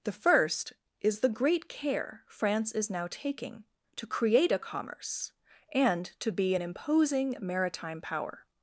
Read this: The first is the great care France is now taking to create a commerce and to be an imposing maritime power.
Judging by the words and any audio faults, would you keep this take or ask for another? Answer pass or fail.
pass